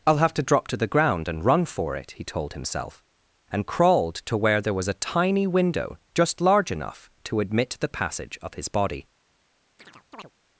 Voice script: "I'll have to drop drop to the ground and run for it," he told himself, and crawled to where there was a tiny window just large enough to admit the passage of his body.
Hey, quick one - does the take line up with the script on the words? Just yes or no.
no